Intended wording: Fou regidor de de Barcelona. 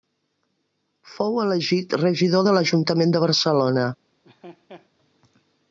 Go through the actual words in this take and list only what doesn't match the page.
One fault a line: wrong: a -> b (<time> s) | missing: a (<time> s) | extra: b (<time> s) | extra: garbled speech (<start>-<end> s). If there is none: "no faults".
extra: elegit (1.4 s)
extra: l'Ajuntament (2.6 s)